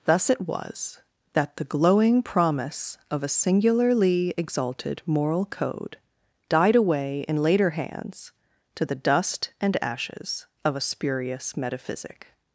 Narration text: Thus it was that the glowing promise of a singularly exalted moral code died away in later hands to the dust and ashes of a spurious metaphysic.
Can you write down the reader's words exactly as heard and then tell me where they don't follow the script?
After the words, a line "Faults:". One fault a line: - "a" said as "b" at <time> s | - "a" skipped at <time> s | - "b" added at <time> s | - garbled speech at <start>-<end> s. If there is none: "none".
Thus it was that the glowing promise of a singularly exalted moral code died away in later hands to the dust and ashes of a spurious metaphysic.
Faults:
none